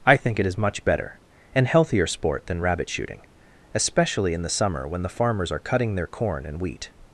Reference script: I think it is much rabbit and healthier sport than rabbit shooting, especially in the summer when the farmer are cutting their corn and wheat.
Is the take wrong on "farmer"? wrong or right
wrong